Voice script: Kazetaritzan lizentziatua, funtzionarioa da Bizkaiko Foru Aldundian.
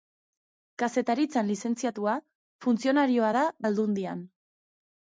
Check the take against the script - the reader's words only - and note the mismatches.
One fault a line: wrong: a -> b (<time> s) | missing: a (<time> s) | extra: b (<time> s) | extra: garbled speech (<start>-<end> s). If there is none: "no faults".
missing: Bizkaiko Foru (3.4 s)